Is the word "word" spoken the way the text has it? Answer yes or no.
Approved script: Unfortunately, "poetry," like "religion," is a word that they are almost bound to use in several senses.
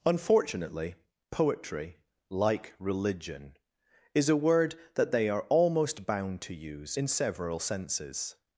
yes